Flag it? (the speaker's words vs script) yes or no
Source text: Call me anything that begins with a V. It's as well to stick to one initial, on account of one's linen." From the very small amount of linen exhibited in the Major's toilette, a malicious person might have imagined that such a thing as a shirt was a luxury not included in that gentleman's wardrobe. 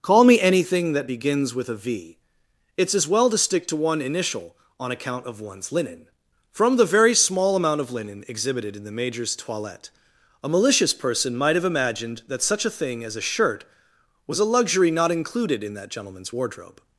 no